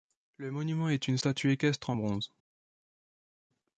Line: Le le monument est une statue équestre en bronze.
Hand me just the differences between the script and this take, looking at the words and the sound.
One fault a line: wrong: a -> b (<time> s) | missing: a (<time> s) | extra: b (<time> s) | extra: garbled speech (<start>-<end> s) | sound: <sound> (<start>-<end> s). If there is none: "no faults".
missing: le (0.5 s)